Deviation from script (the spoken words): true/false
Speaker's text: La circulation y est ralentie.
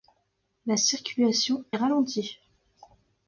true